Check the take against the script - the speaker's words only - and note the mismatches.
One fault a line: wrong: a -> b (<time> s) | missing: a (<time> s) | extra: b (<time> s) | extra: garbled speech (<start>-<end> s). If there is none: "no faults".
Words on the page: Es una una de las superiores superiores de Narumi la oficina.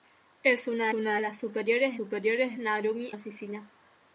no faults